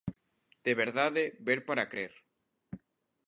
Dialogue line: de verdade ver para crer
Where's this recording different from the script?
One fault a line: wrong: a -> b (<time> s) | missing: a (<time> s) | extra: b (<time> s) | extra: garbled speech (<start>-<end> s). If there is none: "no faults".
no faults